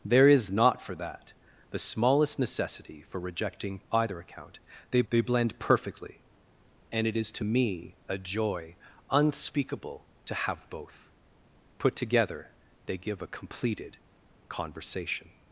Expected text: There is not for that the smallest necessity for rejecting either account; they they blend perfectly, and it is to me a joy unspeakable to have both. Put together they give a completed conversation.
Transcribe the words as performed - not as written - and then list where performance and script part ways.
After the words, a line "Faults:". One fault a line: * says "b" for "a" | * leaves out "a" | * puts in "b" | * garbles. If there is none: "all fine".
There is not for that the smallest necessity for rejecting either account; they they blend perfectly, and it is to me a joy unspeakable to have both. Put together they give a completed conversation.
Faults:
all fine